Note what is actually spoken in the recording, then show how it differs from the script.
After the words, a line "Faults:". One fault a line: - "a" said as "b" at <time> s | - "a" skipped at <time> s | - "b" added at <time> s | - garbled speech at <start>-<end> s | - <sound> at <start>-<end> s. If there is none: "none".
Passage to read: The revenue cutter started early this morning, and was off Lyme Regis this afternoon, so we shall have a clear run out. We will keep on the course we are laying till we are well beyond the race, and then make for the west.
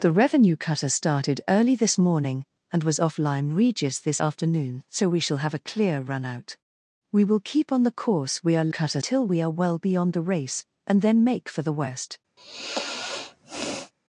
The revenue cutter started early this morning, and was off Lyme Regis this afternoon, so we shall have a clear run out. We will keep on the course we are cutter till we are well beyond the race, and then make for the west.
Faults:
- "laying" said as "cutter" at 8.7 s
- sigh at 12.4-13.9 s